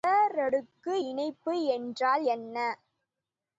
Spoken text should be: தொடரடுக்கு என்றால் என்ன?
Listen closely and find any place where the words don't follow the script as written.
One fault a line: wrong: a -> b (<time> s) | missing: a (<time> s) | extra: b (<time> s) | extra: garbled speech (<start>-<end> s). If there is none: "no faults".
extra: இணைப்பு (1.0 s)